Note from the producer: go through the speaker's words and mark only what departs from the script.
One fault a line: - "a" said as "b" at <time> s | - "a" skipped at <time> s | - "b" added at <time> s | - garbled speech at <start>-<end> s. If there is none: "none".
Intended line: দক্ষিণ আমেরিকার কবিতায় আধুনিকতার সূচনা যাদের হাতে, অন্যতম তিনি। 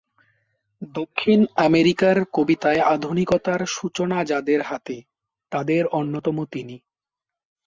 - "তাদের" added at 5.5 s